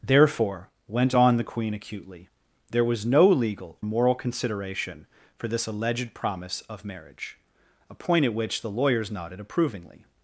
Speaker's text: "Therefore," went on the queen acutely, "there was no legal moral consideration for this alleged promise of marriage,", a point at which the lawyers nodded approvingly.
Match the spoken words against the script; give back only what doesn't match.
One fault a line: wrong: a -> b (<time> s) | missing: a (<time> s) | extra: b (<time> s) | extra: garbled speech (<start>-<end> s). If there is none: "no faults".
no faults